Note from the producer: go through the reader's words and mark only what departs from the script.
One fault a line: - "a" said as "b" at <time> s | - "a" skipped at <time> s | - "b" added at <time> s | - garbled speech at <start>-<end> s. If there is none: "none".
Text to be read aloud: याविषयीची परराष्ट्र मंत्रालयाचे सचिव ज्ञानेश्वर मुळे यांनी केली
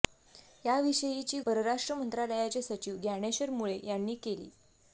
none